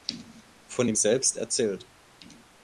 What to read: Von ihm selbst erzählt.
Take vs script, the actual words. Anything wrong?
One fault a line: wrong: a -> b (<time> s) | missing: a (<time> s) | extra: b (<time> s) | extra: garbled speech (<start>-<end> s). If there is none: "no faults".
no faults